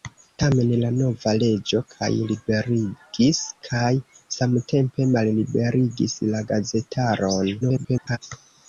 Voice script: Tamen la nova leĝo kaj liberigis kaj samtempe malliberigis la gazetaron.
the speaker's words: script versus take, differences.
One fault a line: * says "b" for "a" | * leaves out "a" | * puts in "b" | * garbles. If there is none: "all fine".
* garbles